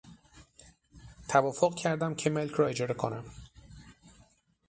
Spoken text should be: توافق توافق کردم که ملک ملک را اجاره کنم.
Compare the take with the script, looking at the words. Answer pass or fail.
fail